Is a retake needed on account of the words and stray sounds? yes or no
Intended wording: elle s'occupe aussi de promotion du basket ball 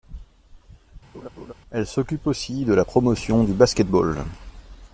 yes